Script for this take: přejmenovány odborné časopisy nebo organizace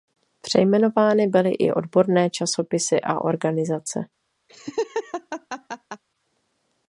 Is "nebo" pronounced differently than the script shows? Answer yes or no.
yes